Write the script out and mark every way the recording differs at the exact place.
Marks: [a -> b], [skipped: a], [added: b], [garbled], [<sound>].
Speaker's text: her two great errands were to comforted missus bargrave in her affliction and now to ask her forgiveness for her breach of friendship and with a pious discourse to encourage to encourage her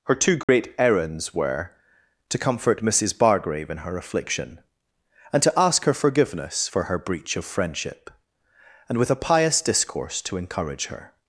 her two great [dropout] errands were to [comforted -> comfort] missus bargrave in her affliction and [skipped: now] to ask her forgiveness for her breach of friendship and with a pious discourse to encourage [skipped: to encourage] her